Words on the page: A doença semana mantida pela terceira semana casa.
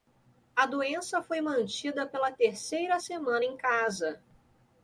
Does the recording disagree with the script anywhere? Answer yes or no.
yes